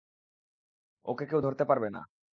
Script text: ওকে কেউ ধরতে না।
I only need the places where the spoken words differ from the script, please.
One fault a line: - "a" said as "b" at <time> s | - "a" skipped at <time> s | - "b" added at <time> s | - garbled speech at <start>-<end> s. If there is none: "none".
- "পারবে" added at 1.7 s